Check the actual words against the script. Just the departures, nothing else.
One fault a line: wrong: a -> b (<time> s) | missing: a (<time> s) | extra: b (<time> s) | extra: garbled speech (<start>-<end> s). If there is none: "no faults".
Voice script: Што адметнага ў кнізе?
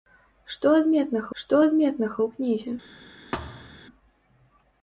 extra: што адметнага (1.4 s)